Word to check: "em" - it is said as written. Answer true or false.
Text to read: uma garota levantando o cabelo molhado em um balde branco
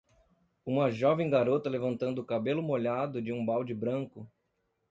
false